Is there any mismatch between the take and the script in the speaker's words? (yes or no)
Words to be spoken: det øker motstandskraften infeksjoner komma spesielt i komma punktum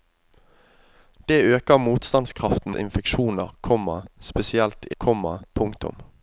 no